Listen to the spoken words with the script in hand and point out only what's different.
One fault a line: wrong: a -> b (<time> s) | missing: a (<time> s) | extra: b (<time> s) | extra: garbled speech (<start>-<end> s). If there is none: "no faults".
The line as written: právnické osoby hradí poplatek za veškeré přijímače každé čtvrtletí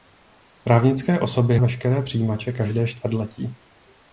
missing: hradí poplatek za (1.6 s)